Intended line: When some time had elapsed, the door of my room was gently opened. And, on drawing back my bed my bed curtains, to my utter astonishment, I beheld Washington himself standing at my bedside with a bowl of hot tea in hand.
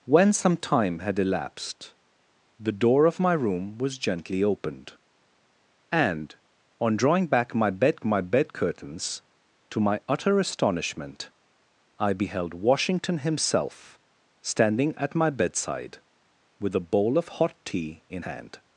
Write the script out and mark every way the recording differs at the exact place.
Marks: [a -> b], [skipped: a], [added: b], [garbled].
When some time had elapsed, the door of my room was gently opened. And, on drawing back my bed my bed curtains, to my utter astonishment, I beheld Washington himself standing at my bedside with a bowl of hot tea in hand.